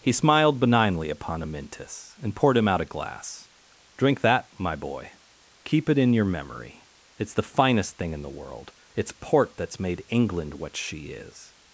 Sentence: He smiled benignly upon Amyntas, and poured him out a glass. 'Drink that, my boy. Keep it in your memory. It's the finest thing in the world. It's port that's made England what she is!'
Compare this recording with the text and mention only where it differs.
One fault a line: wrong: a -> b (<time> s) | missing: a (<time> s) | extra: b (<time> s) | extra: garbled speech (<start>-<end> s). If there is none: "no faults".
no faults